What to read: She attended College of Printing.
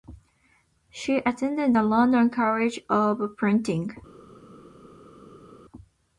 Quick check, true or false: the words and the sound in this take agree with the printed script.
false